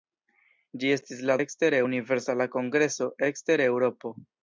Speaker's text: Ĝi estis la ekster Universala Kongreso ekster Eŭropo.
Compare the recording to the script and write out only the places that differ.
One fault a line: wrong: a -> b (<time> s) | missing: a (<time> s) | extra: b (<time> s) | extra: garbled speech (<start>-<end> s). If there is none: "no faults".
no faults